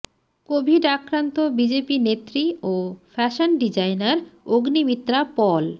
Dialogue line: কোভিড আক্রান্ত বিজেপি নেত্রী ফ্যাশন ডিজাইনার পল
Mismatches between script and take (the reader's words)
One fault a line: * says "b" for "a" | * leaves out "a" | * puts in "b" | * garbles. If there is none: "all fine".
* puts in "ও"
* puts in "অগ্নিমিত্রা"